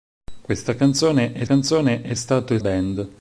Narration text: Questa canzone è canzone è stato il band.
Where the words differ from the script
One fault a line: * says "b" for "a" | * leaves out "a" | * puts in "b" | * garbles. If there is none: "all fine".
all fine